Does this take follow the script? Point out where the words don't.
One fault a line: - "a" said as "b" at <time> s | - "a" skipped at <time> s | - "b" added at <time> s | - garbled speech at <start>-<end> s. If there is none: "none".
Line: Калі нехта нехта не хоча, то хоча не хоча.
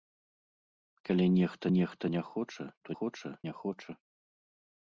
none